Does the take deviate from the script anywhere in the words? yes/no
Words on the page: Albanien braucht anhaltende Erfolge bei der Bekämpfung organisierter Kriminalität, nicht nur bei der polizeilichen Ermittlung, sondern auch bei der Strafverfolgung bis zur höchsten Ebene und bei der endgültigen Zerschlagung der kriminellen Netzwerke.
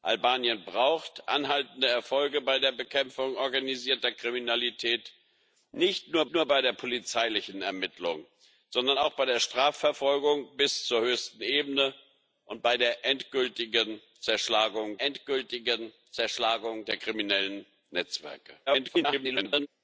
yes